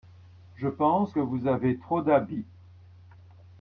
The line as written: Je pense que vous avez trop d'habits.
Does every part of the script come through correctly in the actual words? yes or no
yes